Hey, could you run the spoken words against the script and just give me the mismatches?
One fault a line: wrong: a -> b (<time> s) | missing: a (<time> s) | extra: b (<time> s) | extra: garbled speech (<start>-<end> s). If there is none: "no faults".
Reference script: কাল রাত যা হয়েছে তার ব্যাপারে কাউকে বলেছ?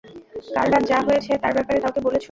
no faults